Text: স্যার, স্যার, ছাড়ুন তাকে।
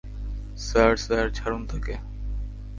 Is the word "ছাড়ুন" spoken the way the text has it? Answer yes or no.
yes